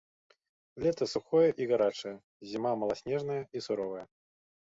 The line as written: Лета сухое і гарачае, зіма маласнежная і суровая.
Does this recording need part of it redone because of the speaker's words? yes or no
no